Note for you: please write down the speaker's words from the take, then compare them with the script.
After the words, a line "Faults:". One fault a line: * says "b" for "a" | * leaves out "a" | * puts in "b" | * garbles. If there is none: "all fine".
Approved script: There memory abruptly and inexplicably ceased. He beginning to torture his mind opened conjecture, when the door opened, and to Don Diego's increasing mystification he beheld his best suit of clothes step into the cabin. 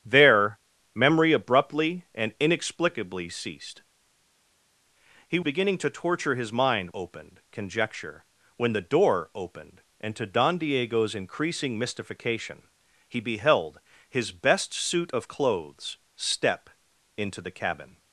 There memory abruptly and inexplicably ceased. He beginning to torture his mind opened conjecture, when the door opened, and to Don Diego's increasing mystification he beheld his best suit of clothes step into the cabin.
Faults:
all fine